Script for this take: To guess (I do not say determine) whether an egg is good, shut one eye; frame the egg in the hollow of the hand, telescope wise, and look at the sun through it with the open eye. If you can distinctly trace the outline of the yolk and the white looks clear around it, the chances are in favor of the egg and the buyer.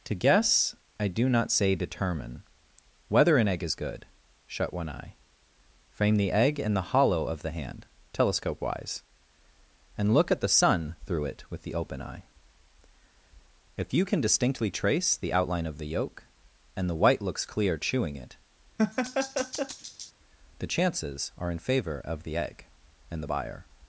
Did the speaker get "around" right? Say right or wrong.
wrong